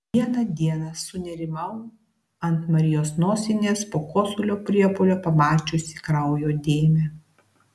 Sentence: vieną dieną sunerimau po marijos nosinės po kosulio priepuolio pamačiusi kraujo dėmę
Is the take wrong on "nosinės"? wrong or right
right